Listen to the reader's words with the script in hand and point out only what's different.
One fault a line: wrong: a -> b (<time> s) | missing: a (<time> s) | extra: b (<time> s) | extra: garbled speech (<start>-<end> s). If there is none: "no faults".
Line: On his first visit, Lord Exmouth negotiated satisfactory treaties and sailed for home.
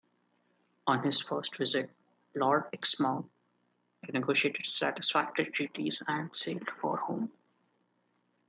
no faults